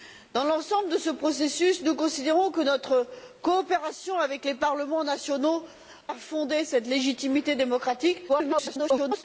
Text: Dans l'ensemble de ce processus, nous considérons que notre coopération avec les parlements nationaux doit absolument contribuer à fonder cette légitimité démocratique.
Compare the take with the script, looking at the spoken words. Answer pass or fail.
fail